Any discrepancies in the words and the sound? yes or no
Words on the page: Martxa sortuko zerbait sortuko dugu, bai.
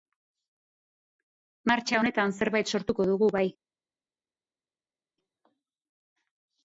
yes